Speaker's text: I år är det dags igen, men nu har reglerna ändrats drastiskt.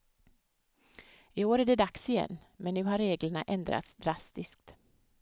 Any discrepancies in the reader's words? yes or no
no